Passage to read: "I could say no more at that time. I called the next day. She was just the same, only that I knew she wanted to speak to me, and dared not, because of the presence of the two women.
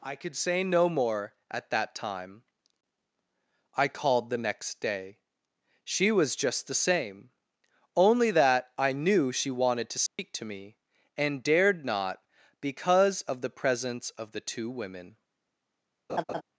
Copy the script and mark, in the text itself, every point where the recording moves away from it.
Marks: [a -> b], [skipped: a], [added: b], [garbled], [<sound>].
"I could say no more at that time. I called the next day. She was just the same, only that I knew she wanted to speak [dropout] to me, and dared not, because of the presence of the two women. [laugh]